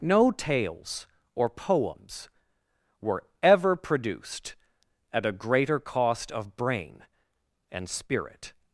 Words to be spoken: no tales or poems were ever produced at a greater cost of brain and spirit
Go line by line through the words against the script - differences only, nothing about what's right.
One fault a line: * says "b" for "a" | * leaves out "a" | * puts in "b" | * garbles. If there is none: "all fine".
all fine